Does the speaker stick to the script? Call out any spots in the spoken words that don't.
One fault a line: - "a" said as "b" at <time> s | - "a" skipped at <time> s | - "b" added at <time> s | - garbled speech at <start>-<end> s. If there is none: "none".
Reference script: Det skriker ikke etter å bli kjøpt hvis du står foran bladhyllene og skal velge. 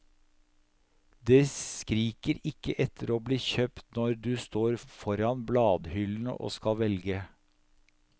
- "hvis" said as "når" at 4.0 s